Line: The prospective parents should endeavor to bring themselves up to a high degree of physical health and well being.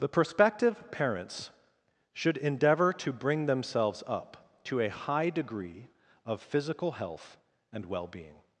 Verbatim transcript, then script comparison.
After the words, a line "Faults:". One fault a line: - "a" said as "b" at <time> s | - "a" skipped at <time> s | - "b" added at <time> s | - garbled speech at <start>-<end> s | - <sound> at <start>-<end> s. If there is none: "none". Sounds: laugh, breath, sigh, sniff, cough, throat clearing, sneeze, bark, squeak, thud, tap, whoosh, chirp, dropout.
The prospective parents should endeavor to bring themselves up to a high degree of physical health and well being.
Faults:
none